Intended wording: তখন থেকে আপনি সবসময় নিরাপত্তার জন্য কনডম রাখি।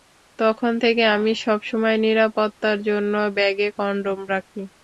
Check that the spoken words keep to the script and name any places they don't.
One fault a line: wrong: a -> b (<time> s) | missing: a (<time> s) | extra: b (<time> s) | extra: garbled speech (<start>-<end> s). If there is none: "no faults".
wrong: আপনি -> আমি (1.2 s)
extra: ব্যাগে (3.4 s)